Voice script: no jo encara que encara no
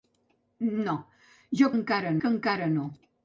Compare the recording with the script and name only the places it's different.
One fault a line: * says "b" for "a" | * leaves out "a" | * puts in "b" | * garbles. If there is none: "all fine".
all fine